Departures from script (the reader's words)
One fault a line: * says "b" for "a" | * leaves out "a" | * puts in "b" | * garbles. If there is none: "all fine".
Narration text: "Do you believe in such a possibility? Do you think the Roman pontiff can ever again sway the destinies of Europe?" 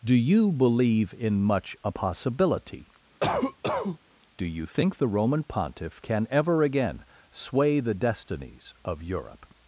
* says "much" for "such"